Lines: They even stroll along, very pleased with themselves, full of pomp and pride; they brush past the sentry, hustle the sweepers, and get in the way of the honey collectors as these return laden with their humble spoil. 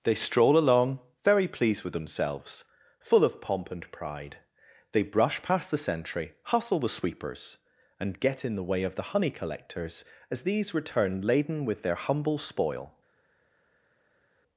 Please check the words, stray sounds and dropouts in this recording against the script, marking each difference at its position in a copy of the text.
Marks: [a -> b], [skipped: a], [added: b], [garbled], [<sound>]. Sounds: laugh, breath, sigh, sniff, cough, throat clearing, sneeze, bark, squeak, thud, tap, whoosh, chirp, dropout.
They [skipped: even] stroll along, very pleased with themselves, full of pomp and pride; they brush past the sentry, hustle the sweepers, and get in the way of the honey collectors as these return laden with their humble spoil.